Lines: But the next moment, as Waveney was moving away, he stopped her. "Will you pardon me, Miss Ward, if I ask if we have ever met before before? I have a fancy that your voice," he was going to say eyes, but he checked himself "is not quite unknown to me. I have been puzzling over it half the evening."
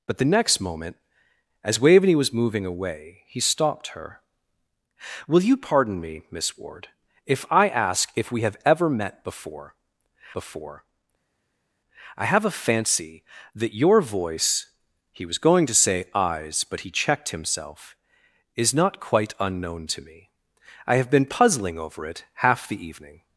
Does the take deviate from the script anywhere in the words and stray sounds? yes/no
no